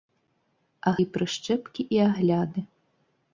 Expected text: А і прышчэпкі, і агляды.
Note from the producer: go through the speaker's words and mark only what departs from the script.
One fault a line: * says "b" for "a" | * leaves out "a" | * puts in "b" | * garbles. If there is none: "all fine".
all fine